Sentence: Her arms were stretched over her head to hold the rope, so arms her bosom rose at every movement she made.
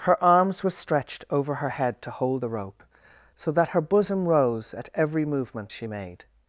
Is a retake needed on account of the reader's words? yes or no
yes